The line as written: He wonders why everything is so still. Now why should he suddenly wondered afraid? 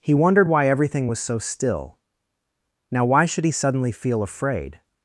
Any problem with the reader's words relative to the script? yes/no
yes